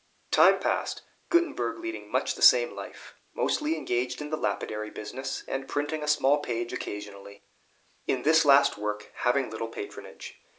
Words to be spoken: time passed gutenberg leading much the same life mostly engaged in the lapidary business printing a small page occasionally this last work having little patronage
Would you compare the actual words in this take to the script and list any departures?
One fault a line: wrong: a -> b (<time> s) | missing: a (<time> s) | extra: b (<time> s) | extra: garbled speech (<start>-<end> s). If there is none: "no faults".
extra: and (5.5 s)
extra: in (8.1 s)